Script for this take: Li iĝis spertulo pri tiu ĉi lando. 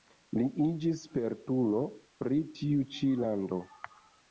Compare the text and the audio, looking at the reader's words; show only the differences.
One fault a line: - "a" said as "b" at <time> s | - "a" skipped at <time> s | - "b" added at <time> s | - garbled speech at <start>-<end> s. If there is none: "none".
none